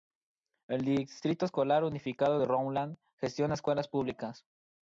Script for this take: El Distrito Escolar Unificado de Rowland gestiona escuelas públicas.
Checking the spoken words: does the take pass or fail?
pass